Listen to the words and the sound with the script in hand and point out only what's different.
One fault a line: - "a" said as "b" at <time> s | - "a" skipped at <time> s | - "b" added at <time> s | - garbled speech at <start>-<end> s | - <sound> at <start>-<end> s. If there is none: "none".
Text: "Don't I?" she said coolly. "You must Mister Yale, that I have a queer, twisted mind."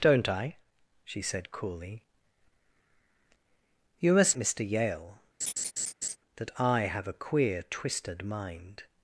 - laugh at 5.4-6.2 s